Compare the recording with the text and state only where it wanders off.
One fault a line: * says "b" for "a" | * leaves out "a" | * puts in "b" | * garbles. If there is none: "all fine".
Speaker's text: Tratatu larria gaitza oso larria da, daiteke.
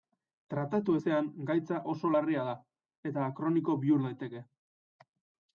* says "ezean" for "larria"
* puts in "eta kroniko bihur"